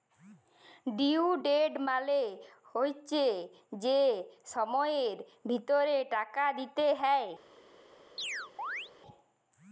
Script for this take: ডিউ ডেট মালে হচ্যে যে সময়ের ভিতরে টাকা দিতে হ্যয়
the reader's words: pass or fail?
pass